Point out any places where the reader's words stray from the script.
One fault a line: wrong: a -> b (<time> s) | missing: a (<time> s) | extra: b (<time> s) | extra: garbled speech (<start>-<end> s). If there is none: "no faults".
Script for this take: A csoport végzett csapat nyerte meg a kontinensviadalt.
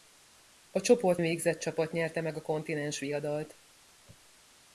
no faults